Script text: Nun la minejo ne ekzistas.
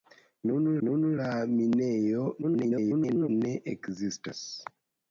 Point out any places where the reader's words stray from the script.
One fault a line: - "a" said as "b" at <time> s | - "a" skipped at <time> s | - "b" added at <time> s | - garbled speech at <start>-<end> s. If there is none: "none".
- "nun" added at 0.9 s
- garbled speech at 2.4-3.3 s